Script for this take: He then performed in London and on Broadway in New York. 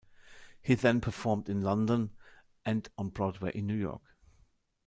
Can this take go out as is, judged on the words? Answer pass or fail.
pass